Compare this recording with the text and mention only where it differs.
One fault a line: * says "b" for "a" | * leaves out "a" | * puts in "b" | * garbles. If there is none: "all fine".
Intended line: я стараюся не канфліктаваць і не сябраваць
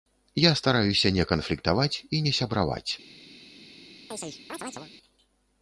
all fine